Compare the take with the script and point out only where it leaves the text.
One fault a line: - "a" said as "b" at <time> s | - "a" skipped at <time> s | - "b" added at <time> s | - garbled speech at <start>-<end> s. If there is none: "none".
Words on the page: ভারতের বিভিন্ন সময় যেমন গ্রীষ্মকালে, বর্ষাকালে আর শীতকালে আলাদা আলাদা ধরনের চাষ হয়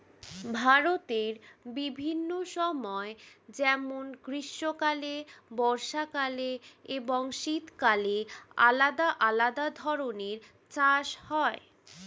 - "আর" said as "এবং" at 7.0 s